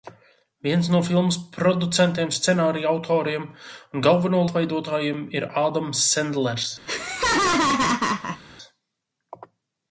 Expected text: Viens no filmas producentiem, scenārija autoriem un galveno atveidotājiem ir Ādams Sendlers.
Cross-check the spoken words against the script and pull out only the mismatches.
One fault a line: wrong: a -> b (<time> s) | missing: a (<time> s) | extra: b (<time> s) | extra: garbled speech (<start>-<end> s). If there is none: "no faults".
no faults